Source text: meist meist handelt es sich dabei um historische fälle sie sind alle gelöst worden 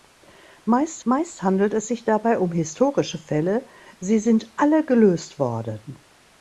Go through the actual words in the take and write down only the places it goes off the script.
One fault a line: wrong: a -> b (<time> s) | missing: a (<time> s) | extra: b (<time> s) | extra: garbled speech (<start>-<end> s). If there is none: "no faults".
no faults